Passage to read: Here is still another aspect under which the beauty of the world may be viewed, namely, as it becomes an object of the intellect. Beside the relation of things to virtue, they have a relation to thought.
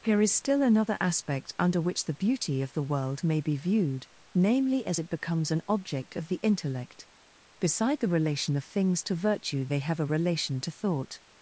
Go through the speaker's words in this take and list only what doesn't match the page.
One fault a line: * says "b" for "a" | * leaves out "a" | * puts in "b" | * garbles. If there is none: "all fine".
all fine